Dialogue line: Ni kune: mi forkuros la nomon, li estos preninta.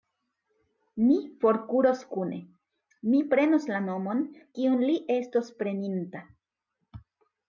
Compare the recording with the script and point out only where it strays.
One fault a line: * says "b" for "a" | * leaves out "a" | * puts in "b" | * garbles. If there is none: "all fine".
* puts in "forkuros"
* says "prenos" for "forkuros"
* puts in "kiun"